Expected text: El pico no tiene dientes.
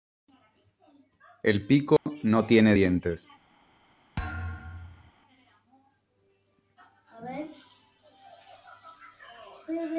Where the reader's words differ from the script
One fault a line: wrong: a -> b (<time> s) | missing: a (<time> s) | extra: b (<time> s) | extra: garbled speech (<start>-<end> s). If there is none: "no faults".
no faults